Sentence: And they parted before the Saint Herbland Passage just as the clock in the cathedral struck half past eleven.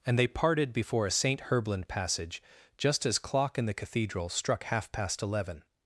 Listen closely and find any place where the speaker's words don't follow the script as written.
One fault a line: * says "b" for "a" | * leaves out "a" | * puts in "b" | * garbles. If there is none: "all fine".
* says "a" for "the"
* leaves out "the"